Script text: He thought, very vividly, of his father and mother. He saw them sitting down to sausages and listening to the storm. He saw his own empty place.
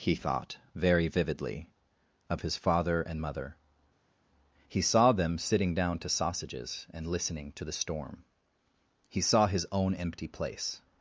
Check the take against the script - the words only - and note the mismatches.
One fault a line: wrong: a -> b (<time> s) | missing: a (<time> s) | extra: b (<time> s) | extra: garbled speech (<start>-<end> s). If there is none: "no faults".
no faults